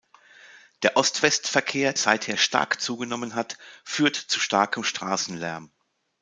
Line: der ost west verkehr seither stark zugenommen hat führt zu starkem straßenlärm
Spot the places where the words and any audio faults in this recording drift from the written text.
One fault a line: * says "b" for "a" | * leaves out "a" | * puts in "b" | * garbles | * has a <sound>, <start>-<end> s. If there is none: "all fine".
all fine